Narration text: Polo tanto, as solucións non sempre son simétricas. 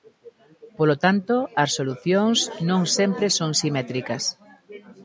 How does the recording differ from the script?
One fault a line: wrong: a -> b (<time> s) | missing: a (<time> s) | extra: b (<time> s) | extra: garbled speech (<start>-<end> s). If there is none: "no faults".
no faults